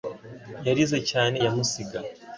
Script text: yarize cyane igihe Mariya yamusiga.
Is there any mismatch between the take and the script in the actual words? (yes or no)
yes